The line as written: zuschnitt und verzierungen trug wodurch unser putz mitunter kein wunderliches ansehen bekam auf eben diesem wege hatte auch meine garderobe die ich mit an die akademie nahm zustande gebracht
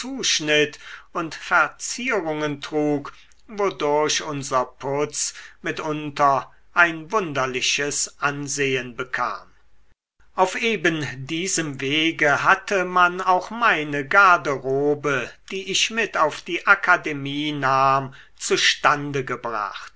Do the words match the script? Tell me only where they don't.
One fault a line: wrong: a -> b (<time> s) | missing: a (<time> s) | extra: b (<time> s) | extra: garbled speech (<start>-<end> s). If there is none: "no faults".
wrong: kein -> ein (6.7 s)
extra: man (12.8 s)
wrong: an -> auf (16.2 s)